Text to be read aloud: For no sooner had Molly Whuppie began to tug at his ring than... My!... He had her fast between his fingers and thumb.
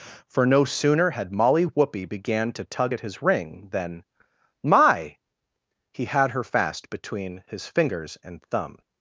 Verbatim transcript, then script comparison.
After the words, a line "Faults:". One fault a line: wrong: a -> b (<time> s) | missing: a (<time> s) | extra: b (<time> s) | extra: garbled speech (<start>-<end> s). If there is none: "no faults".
For no sooner had Molly Whuppie began to tug at his ring than... My!... He had her fast between his fingers and thumb.
Faults:
no faults